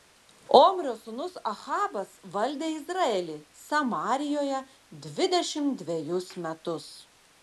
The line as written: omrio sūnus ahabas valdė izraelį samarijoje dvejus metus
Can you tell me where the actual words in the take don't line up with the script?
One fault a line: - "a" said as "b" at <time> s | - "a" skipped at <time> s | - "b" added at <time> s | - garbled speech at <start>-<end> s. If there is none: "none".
- "dvidešimt" added at 5.1 s